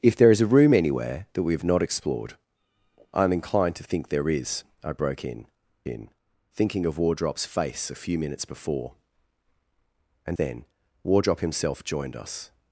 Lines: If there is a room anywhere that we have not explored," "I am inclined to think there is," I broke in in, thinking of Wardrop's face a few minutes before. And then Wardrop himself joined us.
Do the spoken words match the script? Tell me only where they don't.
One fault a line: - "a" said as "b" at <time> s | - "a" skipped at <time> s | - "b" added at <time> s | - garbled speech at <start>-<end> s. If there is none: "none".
none